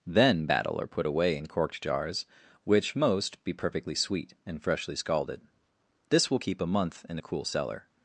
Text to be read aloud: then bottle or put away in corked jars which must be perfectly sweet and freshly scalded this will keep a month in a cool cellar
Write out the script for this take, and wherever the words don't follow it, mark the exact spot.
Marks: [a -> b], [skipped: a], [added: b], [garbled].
then [bottle -> battle] or put away in corked jars which [must -> most] be perfectly sweet and freshly scalded this will keep a month in a cool cellar